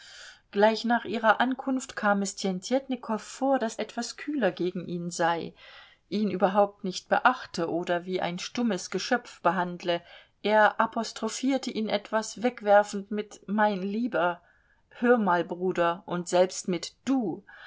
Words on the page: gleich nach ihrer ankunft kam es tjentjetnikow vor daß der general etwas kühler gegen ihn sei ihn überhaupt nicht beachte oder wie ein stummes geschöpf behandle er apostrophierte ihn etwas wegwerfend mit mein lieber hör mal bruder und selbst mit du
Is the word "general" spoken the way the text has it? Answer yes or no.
no